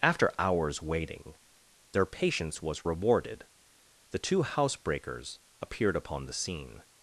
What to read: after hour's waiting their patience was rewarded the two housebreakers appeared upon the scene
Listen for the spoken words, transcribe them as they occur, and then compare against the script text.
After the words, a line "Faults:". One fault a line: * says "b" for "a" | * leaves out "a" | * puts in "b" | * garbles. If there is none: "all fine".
after hour's waiting their patience was rewarded the two housebreakers appeared upon the scene
Faults:
all fine